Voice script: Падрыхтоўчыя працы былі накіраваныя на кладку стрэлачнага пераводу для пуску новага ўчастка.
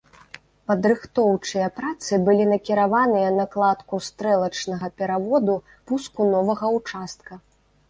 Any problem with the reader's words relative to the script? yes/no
yes